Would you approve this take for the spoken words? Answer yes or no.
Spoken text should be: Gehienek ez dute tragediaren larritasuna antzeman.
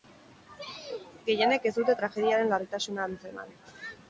yes